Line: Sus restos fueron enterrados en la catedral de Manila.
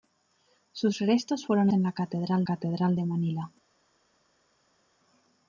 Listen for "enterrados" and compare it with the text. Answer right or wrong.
wrong